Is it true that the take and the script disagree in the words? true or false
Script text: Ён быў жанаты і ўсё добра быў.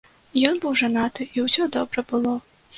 true